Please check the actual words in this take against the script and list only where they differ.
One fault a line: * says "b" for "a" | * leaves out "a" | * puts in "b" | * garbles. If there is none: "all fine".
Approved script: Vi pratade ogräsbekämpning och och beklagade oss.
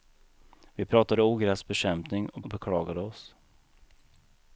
all fine